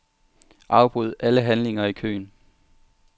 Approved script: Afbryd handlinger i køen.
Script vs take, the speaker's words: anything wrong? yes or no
yes